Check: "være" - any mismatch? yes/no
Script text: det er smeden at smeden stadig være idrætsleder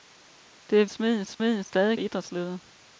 no